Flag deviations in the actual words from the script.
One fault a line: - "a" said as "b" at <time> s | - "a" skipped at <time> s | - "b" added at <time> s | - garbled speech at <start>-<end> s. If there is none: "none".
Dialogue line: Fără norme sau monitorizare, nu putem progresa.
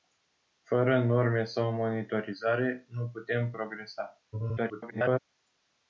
- garbled speech at 4.3-5.2 s